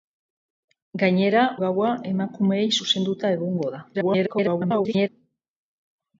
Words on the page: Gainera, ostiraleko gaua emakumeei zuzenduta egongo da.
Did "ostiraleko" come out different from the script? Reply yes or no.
yes